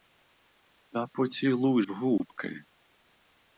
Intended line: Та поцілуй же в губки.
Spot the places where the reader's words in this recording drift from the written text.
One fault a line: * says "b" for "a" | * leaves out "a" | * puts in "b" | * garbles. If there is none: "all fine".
* leaves out "же"